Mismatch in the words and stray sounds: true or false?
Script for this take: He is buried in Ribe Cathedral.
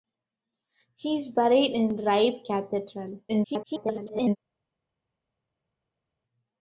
true